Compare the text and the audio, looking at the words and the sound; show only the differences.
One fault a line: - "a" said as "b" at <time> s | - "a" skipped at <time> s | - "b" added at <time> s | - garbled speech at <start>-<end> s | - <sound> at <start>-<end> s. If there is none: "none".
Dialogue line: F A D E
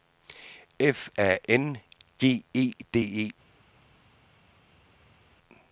- "N G E" added at 1.5 s